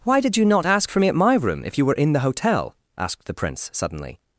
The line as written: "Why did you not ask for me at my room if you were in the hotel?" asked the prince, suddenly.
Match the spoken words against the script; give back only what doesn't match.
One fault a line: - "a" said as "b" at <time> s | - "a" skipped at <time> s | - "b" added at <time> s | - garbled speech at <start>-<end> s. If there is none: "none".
none